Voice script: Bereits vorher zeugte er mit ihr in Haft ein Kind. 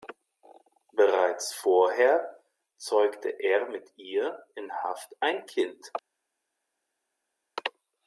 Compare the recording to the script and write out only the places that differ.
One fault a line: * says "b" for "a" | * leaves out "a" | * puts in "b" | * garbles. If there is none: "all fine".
all fine